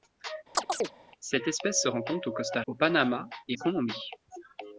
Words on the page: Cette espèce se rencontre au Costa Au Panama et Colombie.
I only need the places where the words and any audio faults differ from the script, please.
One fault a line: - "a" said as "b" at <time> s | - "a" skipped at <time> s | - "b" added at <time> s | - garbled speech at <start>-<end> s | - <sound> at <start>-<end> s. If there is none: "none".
- chirp at 0.5-0.9 s